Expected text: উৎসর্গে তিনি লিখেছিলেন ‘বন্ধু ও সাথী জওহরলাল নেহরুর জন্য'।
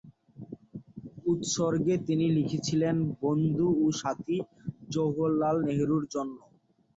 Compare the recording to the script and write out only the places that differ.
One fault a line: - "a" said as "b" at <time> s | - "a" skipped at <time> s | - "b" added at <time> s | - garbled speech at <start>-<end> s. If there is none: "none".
none